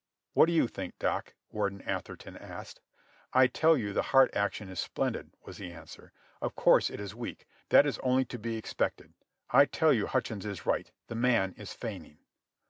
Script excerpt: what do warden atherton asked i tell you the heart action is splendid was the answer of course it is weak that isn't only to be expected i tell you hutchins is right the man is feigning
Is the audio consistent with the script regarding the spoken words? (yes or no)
no